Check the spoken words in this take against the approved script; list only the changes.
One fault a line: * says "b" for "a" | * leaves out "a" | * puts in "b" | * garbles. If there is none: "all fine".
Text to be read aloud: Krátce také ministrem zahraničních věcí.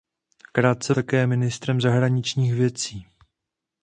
all fine